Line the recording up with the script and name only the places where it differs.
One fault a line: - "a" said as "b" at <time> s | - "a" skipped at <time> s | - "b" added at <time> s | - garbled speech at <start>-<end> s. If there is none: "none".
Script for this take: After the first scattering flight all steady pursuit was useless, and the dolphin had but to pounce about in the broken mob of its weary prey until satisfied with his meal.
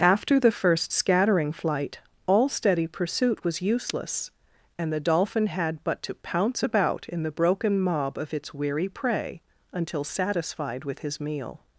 none